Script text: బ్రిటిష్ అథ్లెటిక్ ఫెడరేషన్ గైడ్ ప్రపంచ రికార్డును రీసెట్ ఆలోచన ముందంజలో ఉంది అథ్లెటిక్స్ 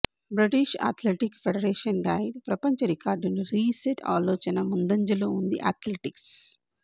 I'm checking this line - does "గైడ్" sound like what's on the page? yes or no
yes